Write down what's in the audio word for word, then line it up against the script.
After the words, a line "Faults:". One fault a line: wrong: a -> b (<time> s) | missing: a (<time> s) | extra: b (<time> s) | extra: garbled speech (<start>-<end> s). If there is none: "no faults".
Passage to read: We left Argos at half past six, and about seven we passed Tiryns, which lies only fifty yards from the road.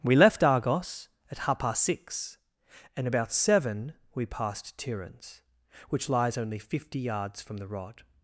We left Argos at half past six, and about seven we passed Tiryns, which lies only fifty yards from the rod.
Faults:
wrong: road -> rod (7.7 s)